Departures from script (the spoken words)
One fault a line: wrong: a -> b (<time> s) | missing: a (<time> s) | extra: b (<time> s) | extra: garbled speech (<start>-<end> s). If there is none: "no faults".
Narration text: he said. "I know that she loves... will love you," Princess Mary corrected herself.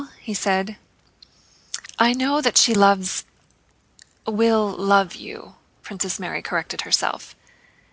no faults